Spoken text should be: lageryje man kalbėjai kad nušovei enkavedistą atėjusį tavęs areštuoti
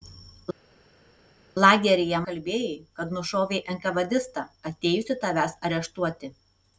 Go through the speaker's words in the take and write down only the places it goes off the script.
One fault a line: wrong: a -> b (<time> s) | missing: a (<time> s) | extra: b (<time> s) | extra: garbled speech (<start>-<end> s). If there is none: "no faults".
missing: man (2.2 s)